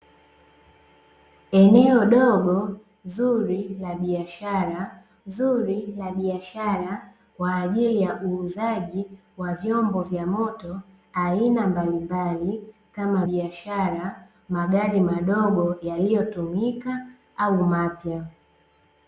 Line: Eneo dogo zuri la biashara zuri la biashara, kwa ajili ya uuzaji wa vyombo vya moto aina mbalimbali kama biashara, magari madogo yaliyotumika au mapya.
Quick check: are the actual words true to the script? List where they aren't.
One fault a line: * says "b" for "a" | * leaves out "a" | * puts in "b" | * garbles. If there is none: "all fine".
all fine